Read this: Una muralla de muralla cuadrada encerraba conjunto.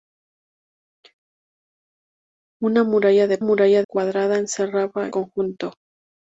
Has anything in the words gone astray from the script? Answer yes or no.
no